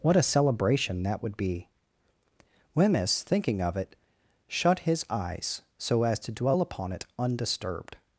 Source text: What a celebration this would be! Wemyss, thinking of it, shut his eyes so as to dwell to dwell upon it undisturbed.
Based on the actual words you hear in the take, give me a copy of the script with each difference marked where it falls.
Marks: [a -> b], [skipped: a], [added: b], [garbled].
What a celebration [this -> that] would be! Wemyss, thinking of it, shut his eyes so as to dwell [skipped: to dwell] upon it undisturbed.